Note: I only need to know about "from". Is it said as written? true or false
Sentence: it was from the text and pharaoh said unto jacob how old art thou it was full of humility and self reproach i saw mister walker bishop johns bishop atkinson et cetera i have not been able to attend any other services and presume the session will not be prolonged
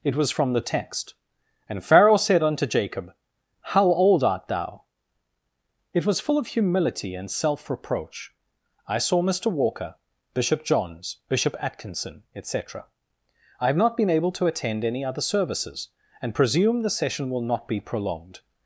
true